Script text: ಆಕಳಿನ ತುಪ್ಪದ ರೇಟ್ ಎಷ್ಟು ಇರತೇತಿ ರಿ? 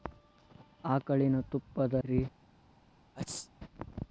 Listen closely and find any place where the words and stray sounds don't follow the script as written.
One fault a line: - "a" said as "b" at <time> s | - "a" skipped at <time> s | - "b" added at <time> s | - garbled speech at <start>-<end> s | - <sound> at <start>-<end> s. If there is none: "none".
- "ರೇಟ್ ಎಷ್ಟು ಇರತೇತಿ" skipped at 1.9 s
- sneeze at 3.1-3.5 s